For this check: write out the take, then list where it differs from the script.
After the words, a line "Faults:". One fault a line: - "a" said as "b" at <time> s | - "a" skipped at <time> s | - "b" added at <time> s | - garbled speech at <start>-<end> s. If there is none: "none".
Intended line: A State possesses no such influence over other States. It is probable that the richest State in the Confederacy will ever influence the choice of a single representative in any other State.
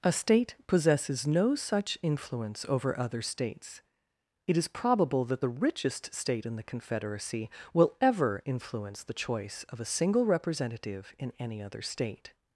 A State possesses no such influence over other States. It is probable that the richest State in the Confederacy will ever influence the choice of a single representative in any other State.
Faults:
none